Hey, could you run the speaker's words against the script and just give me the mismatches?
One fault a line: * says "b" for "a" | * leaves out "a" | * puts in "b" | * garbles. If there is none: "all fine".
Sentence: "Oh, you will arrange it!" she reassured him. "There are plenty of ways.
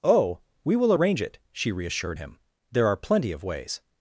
* says "we" for "you"